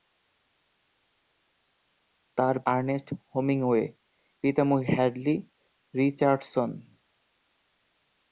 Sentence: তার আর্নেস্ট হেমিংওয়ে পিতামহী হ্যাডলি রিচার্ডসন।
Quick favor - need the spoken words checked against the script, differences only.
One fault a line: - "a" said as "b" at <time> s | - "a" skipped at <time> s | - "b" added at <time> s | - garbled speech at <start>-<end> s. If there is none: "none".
none